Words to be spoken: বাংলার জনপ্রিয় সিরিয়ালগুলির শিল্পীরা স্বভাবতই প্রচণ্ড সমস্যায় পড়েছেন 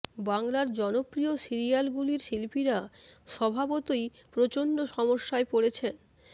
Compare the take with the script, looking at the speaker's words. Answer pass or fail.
pass